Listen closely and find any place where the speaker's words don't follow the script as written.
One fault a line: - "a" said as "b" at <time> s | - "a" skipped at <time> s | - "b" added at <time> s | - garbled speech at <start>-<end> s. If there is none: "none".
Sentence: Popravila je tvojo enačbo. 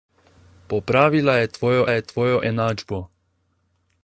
- "je tvojo" added at 1.9 s